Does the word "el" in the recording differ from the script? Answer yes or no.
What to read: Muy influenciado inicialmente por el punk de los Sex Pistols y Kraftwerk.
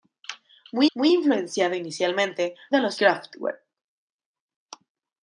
yes